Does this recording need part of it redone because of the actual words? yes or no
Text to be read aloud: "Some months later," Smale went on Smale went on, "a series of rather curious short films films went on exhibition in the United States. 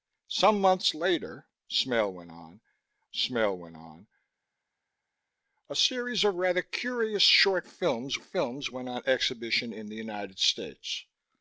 no